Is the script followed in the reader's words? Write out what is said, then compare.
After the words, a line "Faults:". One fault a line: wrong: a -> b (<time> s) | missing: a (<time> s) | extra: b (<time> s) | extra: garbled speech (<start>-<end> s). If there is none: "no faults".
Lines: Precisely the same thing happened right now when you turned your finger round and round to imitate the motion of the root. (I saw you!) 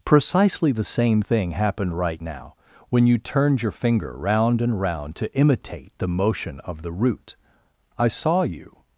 Precisely the same thing happened right now when you turned your finger round and round to imitate the motion of the root. (I saw you!)
Faults:
no faults